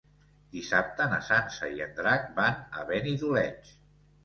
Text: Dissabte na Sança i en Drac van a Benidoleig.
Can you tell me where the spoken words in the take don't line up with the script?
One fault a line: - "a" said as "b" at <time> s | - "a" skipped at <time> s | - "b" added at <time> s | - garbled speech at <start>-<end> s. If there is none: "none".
none